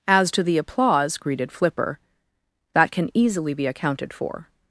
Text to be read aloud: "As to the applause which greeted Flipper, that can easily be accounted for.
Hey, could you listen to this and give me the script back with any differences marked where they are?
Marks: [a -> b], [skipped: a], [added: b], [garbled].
"As to the applause [skipped: which] greeted Flipper, that can easily be accounted for.